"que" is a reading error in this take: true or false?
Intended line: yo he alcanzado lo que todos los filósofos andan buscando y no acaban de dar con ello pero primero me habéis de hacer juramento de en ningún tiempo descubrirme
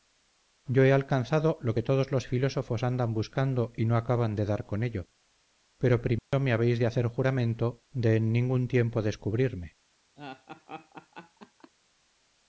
false